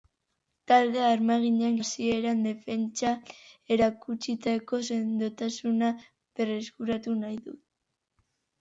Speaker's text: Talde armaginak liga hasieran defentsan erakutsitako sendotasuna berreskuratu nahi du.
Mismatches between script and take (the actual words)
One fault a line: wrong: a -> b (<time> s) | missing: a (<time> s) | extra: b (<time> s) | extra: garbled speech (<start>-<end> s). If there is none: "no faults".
missing: liga (1.8 s)